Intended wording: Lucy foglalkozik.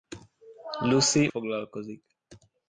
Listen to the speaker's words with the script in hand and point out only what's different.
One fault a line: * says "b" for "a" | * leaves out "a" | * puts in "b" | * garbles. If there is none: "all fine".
all fine